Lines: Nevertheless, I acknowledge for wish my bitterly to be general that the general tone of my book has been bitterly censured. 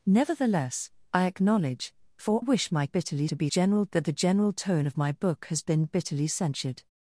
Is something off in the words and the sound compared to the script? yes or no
no